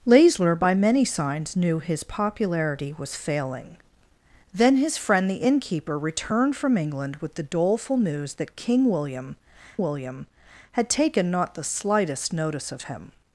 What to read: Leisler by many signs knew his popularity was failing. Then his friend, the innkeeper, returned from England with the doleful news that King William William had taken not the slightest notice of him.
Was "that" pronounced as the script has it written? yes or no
yes